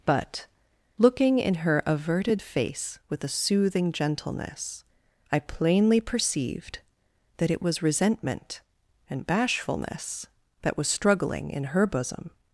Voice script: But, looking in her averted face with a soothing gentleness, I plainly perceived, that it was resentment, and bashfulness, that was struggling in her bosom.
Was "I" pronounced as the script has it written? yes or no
yes